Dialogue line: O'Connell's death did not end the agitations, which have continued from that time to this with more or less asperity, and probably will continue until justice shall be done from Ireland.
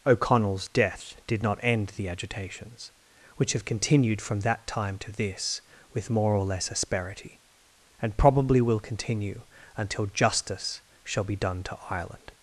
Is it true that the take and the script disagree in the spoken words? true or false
true